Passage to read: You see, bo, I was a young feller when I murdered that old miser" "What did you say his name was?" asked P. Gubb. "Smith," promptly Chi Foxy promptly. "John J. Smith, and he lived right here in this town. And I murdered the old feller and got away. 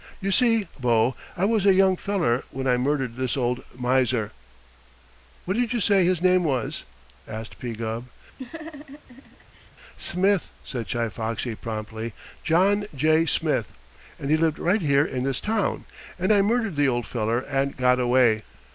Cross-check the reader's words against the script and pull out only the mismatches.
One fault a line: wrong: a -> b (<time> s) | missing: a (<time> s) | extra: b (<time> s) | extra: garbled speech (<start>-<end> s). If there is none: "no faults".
wrong: that -> this (3.2 s)
wrong: promptly -> said (10.6 s)